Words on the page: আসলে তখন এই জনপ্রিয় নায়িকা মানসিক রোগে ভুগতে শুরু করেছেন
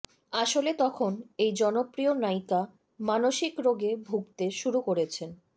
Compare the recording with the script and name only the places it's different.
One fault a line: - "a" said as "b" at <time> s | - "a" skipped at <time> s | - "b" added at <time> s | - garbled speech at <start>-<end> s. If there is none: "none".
none